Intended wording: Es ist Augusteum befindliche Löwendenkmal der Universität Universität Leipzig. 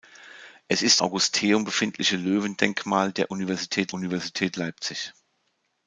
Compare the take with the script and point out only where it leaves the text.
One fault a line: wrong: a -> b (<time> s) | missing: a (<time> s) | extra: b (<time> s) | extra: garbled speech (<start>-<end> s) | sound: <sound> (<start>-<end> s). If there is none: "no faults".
no faults